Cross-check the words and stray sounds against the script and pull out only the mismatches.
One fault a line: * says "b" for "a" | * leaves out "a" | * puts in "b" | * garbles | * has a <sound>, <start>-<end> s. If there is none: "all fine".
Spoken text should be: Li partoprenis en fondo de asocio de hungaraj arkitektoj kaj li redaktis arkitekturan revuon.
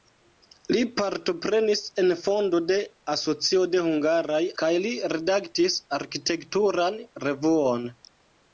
* leaves out "arkitektoj"